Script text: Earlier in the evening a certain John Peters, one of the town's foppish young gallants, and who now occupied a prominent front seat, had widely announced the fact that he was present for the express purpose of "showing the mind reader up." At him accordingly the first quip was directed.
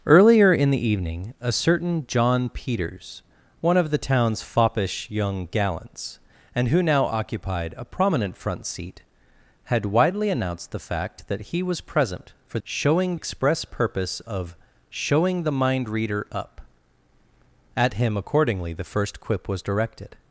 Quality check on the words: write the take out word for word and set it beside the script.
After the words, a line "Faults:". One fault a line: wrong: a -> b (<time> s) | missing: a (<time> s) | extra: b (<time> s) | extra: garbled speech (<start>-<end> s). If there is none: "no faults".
Earlier in the evening a certain John Peters, one of the town's foppish young gallants, and who now occupied a prominent front seat, had widely announced the fact that he was present for showing express purpose of "showing the mind reader up." At him accordingly the first quip was directed.
Faults:
wrong: the -> showing (12.6 s)